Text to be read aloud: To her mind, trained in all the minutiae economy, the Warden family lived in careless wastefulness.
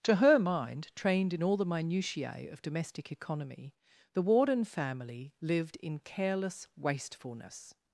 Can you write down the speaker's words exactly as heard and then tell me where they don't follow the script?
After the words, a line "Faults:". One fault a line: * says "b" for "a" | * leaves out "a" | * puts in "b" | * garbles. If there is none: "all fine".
To her mind, trained in all the minutiae of domestic economy, the Warden family lived in careless wastefulness.
Faults:
* puts in "of domestic"